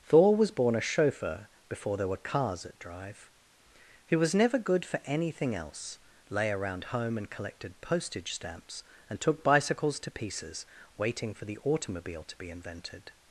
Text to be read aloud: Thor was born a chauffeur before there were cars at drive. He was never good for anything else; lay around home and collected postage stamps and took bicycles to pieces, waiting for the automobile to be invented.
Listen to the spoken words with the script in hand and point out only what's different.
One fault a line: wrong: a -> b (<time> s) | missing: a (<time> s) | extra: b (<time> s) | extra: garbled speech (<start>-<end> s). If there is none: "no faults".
no faults